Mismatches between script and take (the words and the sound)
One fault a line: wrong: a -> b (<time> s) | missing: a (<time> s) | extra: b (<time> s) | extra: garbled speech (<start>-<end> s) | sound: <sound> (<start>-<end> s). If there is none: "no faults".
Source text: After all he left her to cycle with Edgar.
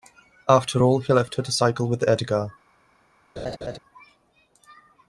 sound: laugh (3.4-3.8 s)